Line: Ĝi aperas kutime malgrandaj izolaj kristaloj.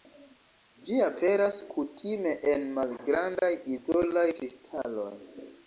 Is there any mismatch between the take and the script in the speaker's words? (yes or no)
yes